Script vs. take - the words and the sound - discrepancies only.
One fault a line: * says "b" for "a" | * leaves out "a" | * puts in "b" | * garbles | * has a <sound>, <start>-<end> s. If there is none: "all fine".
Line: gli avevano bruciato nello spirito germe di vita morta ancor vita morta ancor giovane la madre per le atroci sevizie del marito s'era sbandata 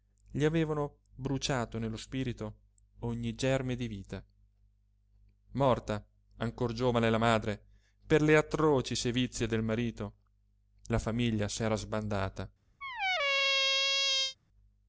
* puts in "ogni"
* leaves out "vita morta ancor"
* puts in "la famiglia"
* has a squeak, 12.8-14.4 s